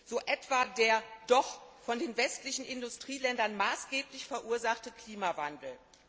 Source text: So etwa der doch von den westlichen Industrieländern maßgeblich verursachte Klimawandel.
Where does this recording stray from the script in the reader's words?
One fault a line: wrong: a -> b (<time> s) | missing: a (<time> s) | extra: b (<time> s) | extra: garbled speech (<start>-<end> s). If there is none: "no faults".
no faults